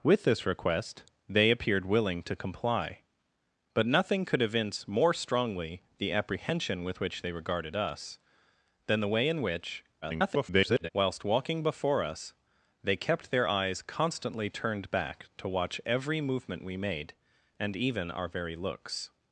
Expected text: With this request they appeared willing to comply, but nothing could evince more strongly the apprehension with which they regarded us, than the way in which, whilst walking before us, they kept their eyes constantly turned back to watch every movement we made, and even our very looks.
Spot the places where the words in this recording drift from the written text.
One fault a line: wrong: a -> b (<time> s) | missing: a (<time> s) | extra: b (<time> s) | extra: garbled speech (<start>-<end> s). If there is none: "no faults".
extra: garbled speech (10.0-10.9 s)